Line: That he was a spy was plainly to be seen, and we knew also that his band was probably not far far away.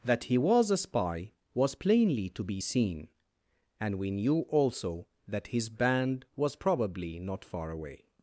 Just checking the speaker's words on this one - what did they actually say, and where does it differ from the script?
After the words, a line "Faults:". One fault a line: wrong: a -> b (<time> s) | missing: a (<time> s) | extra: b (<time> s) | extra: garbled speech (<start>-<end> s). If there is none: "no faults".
That he was a spy was plainly to be seen, and we knew also that his band was probably not far away.
Faults:
missing: far (7.7 s)